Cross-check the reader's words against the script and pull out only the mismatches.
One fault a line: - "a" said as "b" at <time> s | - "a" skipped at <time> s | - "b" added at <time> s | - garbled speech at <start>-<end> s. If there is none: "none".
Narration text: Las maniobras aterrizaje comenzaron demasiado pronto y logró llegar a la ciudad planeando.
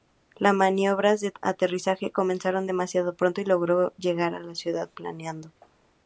- "de" added at 1.2 s